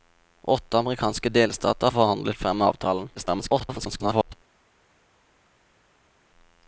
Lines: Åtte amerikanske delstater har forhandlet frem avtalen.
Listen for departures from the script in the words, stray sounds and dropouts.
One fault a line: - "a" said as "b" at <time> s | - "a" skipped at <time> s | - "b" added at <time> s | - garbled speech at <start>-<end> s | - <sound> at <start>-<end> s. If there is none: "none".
- "har" skipped at 1.9 s
- garbled speech at 3.1-4.3 s